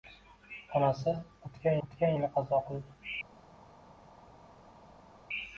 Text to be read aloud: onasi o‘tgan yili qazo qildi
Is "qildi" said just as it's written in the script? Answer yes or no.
yes